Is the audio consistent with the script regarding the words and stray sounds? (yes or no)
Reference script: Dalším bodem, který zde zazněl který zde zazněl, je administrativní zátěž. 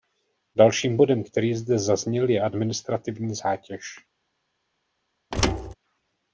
no